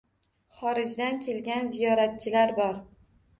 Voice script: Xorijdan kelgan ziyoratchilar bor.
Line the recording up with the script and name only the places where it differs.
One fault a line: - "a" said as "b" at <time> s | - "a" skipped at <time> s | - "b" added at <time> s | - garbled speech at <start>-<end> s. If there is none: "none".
none